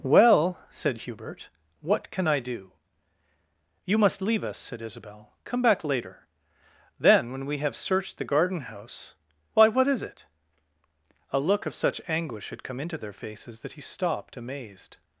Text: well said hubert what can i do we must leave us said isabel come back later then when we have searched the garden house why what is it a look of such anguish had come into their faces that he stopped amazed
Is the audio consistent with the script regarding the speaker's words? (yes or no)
no